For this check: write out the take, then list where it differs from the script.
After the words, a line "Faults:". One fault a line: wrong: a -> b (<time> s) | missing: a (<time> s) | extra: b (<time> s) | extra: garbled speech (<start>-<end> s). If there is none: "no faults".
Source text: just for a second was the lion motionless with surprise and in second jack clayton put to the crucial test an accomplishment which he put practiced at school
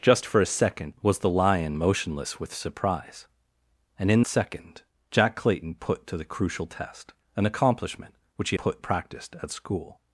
just for a second was the lion motionless with surprise and in second jack clayton put to the crucial test an accomplishment which he put practiced at school
Faults:
no faults